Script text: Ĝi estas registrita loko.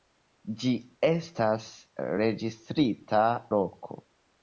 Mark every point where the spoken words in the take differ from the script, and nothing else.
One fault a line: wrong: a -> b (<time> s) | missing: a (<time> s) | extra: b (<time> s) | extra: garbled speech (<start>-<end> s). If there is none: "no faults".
no faults